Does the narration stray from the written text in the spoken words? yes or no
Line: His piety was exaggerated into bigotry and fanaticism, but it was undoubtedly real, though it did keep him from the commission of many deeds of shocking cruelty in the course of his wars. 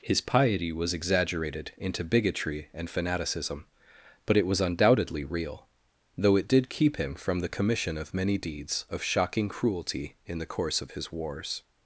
no